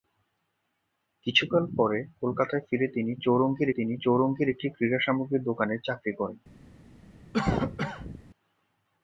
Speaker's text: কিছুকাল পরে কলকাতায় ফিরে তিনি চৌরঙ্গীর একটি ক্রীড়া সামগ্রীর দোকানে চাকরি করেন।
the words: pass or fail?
fail